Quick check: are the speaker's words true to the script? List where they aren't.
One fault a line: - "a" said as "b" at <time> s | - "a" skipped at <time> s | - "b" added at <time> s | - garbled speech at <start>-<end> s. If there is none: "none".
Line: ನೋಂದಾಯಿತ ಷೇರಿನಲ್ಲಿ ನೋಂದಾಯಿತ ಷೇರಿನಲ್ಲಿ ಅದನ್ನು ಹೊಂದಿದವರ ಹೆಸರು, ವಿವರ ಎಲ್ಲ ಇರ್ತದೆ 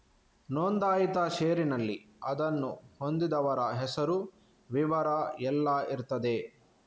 - "ನೋಂದಾಯಿತ ಷೇರಿನಲ್ಲಿ" skipped at 2.0 s